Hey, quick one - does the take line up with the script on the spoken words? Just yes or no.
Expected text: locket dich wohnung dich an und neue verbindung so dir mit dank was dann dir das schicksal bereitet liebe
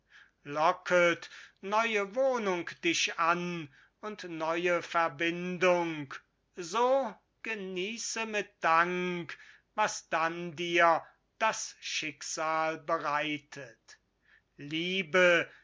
no